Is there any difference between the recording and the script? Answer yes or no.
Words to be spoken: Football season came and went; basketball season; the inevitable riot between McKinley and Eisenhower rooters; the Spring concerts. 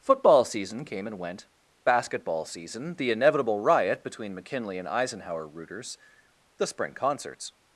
no